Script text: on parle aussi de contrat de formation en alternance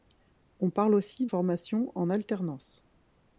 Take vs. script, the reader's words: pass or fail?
fail